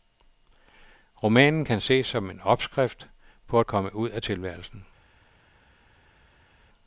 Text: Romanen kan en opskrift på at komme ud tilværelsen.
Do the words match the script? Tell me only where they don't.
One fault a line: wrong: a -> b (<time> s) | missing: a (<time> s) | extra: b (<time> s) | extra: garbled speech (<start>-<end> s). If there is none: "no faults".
extra: ses som (1.8 s)
extra: af (4.1 s)